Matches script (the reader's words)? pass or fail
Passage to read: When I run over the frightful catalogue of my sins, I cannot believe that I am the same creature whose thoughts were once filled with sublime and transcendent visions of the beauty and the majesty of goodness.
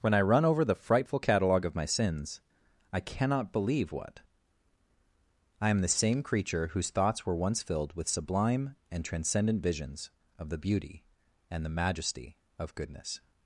fail